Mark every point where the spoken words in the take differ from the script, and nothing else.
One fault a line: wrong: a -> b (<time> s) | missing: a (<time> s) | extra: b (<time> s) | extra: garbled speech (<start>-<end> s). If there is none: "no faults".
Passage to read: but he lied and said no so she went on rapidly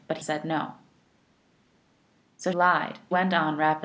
missing: he lied and (0.2 s)
wrong: she -> lied (2.5 s)